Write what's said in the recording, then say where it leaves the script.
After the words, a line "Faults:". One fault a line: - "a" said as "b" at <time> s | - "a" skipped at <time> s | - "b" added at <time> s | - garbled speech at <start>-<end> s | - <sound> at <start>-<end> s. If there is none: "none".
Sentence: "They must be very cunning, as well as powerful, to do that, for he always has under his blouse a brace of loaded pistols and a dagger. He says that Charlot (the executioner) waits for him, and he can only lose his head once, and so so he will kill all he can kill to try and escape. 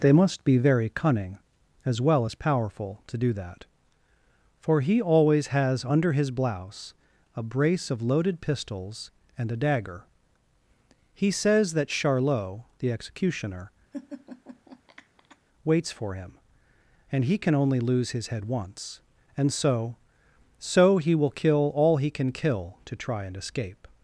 "They must be very cunning, as well as powerful, to do that, for he always has under his blouse a brace of loaded pistols and a dagger. He says that Charlot (the executioner) waits for him, and he can only lose his head once, and so so he will kill all he can kill to try and escape.
Faults:
- laugh at 13.9-15.4 s